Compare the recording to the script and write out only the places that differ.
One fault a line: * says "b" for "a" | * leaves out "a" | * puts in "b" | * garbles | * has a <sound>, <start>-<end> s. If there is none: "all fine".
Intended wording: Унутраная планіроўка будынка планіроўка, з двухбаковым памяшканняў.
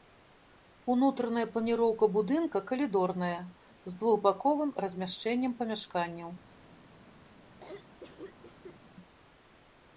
* says "калідорная" for "планіроўка"
* puts in "размяшчэннем"
* has a cough, 7.6-8.8 s